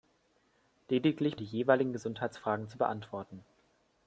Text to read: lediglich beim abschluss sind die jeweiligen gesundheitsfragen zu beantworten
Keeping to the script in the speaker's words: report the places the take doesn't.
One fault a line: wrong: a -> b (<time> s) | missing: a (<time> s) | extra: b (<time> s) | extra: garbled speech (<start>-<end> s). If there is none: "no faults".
missing: beim abschluss sind (1.4 s)